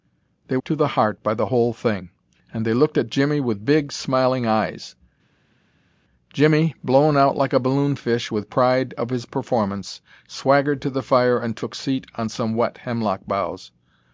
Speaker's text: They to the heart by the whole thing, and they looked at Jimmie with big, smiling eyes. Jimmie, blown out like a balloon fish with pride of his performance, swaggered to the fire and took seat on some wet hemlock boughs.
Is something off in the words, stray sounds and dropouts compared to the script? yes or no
no